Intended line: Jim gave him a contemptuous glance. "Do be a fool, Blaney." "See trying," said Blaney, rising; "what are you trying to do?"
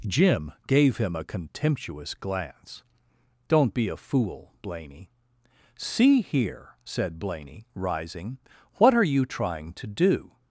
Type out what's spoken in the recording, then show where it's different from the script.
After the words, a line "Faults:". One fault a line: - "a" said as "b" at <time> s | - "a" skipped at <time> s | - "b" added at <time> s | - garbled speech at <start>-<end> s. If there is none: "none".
Jim gave him a contemptuous glance. "Don't be a fool, Blaney." "See here," said Blaney, rising; "what are you trying to do?"
Faults:
- "Do" said as "Don't" at 3.5 s
- "trying" said as "here" at 6.2 s